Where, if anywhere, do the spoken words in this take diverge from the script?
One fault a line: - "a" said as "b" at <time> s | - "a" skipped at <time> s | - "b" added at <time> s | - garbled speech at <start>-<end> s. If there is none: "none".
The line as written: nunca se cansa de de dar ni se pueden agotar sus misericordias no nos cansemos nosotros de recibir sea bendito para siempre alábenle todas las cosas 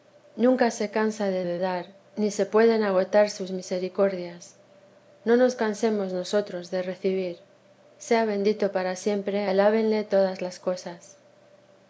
none